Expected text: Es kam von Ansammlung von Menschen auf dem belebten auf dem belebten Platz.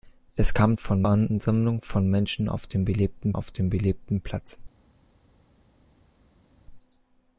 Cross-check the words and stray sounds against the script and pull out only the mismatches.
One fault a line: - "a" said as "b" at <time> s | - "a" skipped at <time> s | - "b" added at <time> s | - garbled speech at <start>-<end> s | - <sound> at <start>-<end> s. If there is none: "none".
none